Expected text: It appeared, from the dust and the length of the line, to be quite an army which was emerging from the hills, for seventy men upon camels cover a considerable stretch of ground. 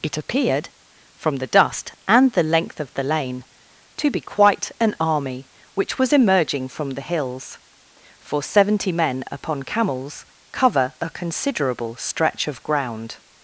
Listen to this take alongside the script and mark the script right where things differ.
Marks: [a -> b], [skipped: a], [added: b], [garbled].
It appeared, from the dust and the length of the [line, -> lane] to be quite an army which was emerging from the hills, for seventy men upon camels cover a considerable stretch of ground.